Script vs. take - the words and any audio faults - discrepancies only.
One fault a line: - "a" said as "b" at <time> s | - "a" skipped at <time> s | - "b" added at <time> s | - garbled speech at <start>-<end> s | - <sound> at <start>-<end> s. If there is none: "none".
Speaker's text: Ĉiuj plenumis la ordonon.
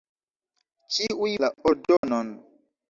- "plenumis" skipped at 1.4 s
- dropout at 2.0-2.0 s